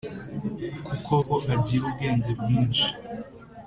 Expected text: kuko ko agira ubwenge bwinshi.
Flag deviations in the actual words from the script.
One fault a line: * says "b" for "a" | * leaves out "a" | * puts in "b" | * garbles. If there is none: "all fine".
all fine